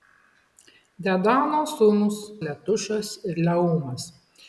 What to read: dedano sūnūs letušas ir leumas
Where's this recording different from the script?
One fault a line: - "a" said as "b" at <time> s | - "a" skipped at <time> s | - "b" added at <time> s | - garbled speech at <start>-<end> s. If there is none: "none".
none